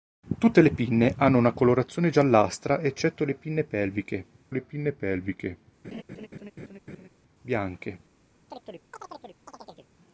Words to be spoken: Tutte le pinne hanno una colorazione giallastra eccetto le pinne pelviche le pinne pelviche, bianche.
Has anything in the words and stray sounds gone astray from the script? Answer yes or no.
yes